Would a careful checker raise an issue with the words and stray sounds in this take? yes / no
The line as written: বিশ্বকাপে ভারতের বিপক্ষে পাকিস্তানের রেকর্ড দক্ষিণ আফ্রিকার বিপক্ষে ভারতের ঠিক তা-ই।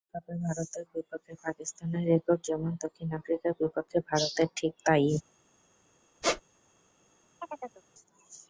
yes